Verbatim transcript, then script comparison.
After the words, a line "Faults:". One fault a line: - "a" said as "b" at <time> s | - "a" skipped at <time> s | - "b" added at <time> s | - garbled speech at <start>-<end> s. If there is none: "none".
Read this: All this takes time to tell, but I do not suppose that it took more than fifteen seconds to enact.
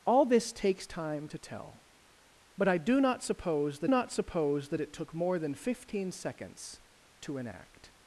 All this takes time to tell, but I do not suppose that not suppose that it took more than fifteen seconds to enact.
Faults:
- "not suppose that" added at 3.9 s